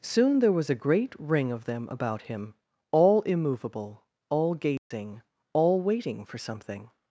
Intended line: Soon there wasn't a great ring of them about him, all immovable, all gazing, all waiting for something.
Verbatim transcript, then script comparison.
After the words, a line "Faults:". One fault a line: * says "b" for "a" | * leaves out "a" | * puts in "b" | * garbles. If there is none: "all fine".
Soon there was a great ring of them about him, all immovable, all gazing, all waiting for something.
Faults:
* says "was" for "wasn't"